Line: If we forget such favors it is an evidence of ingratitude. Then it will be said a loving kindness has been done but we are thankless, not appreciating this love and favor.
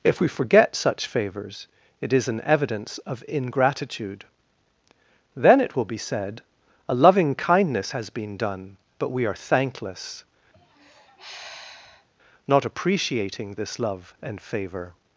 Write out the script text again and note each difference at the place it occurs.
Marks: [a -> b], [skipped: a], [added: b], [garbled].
If we forget such favors it is an evidence of ingratitude. Then it will be said a loving kindness has been done but we are thankless, not appreciating this love and favor.